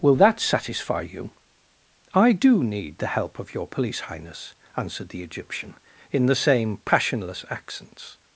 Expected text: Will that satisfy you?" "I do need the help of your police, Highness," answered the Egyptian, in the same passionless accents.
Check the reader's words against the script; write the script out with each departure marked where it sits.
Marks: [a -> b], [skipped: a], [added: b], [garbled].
Will that satisfy you?" "I do need the help of your police, Highness," answered the Egyptian, in the same passionless accents.